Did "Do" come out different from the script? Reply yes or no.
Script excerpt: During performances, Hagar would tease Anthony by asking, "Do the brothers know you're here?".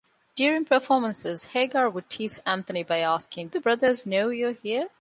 yes